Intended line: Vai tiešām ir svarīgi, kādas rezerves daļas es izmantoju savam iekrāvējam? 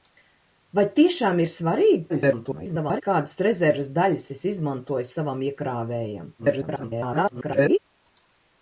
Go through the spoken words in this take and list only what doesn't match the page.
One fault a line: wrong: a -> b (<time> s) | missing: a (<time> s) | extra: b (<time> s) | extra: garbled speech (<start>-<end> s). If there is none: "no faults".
extra: garbled speech (2.1-3.0 s)
extra: garbled speech (6.4-7.8 s)